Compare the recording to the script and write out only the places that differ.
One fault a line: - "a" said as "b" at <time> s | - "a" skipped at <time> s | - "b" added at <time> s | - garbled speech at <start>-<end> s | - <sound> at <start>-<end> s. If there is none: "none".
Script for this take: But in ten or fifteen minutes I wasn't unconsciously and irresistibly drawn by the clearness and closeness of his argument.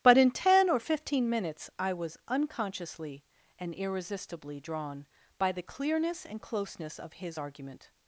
- "wasn't" said as "was" at 1.9 s